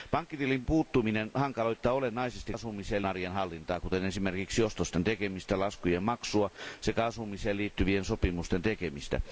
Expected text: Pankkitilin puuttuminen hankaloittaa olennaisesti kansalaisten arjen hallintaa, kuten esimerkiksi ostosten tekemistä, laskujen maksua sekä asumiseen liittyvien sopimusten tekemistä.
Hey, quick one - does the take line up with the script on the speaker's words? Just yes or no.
no